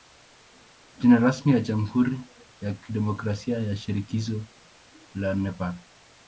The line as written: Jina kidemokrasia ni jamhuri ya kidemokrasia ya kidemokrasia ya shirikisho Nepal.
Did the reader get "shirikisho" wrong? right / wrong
wrong